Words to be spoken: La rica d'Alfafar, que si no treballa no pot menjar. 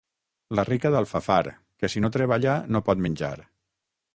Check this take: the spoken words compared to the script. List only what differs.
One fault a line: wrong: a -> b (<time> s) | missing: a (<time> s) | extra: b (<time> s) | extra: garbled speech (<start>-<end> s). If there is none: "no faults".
no faults